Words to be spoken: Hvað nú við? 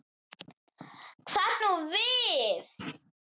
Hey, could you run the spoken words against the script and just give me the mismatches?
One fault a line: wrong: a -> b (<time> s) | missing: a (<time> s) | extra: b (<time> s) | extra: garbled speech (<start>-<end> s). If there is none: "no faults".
no faults